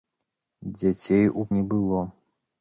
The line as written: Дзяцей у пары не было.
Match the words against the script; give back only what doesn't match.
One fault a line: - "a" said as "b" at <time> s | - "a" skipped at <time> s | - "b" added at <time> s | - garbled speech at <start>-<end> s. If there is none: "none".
- "пары" skipped at 1.5 s